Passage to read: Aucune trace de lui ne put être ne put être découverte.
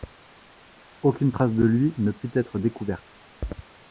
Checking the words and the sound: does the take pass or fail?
fail